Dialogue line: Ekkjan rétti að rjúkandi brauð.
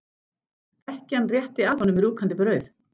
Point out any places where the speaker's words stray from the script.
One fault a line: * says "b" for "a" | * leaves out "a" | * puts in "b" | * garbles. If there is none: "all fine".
* puts in "honum"